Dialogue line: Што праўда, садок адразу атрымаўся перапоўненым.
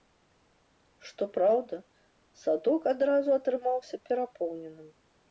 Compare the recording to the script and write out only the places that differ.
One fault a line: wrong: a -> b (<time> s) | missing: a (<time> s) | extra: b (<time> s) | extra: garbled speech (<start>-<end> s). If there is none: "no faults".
no faults